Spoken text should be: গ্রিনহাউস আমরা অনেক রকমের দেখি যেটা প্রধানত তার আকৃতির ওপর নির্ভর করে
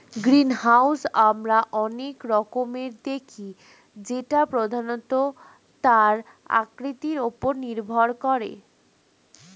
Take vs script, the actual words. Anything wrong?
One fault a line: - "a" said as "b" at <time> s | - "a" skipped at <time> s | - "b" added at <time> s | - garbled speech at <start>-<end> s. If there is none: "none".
none